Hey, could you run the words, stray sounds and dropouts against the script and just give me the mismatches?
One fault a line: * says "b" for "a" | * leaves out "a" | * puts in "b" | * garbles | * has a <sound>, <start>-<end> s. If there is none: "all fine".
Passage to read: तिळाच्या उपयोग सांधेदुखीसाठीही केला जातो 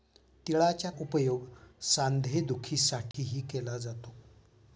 * has a dropout, 3.1-3.1 s